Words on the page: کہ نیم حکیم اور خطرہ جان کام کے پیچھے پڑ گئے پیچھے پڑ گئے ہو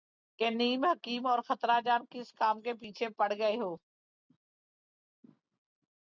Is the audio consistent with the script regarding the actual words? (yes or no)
no